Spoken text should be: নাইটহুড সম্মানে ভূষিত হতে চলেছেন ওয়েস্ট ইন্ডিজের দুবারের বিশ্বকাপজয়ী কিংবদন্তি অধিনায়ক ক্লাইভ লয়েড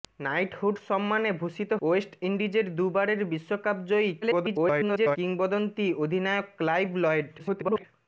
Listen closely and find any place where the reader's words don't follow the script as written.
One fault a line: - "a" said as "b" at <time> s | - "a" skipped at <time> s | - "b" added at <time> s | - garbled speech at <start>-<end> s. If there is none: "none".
- "হতে চলেছেন" skipped at 1.7 s
- garbled speech at 4.2-5.2 s
- garbled speech at 7.4-7.8 s